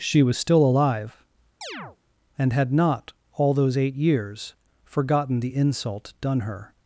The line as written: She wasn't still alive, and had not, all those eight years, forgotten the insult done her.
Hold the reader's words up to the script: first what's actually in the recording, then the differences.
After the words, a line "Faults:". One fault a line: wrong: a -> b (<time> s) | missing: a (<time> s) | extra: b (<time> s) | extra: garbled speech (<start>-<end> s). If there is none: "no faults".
She was still alive, and had not, all those eight years, forgotten the insult done her.
Faults:
wrong: wasn't -> was (0.2 s)